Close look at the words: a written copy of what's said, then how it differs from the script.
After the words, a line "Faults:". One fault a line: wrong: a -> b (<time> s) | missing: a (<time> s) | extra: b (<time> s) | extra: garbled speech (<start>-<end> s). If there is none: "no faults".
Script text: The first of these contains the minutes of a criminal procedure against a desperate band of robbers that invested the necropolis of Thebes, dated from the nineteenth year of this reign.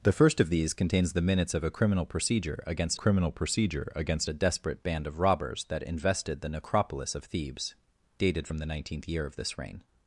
The first of these contains the minutes of a criminal procedure against criminal procedure against a desperate band of robbers that invested the necropolis of Thebes, dated from the nineteenth year of this reign.
Faults:
extra: criminal procedure against (2.9 s)